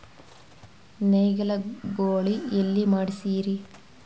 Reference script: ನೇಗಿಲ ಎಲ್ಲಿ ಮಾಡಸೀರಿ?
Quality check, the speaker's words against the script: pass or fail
fail